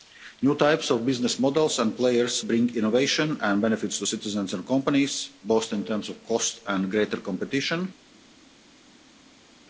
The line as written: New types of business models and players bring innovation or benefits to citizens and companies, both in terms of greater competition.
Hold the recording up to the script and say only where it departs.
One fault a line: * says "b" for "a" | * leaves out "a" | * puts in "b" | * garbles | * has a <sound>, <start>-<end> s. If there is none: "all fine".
* says "and" for "or"
* puts in "cost and"